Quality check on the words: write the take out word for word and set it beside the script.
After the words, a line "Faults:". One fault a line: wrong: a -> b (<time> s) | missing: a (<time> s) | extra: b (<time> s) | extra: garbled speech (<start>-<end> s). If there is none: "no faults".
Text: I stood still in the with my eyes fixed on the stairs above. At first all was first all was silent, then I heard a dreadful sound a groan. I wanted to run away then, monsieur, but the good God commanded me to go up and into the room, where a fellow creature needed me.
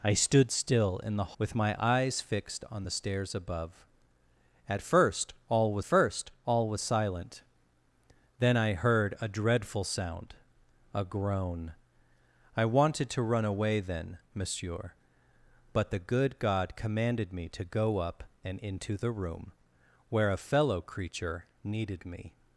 I stood still in the with my eyes fixed on the stairs above. At first all was first all was silent, then I heard a dreadful sound a groan. I wanted to run away then, monsieur, but the good God commanded me to go up and into the room, where a fellow creature needed me.
Faults:
no faults